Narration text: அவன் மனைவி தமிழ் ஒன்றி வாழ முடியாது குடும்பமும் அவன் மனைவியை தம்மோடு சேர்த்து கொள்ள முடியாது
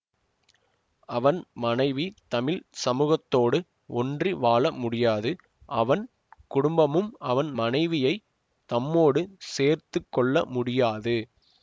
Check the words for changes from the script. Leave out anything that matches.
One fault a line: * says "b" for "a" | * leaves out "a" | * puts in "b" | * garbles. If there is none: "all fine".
* puts in "சமூகத்தோடு"
* puts in "அவன்"